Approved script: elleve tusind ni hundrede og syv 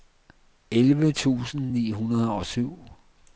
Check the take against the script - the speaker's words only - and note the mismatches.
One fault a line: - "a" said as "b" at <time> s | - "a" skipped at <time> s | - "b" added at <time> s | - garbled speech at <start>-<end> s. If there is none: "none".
none